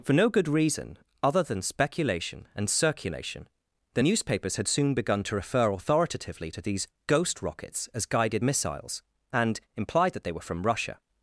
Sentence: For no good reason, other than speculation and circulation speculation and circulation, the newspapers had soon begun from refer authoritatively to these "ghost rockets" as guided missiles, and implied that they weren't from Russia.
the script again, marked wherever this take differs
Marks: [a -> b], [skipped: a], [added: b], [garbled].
For no good reason, other than speculation and circulation [skipped: speculation and circulation,] the newspapers had soon begun [from -> to] refer authoritatively to these "ghost rockets" as guided missiles, and implied that they [weren't -> were] from Russia.